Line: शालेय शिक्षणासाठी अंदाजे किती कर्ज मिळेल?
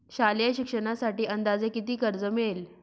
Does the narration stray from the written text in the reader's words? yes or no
no